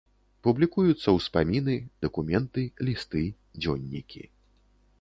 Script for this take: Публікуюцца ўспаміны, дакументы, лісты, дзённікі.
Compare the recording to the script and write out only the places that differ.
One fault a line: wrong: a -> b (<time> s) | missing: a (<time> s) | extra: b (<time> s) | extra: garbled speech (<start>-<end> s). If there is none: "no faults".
no faults